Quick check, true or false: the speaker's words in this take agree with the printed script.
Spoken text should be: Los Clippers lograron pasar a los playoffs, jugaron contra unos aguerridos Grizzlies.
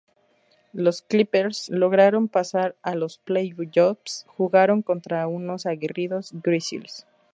true